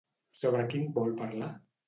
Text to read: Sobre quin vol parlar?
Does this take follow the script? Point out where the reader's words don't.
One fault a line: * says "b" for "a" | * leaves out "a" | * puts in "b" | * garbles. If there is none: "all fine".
all fine